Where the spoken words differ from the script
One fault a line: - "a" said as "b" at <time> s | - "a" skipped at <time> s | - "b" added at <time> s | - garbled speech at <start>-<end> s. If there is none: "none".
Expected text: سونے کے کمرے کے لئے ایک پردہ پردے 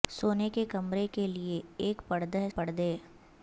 none